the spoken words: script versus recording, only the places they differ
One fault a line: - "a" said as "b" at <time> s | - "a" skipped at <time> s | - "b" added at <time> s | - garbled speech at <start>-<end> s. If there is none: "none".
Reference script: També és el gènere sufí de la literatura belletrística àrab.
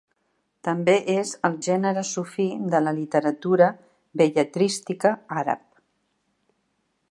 none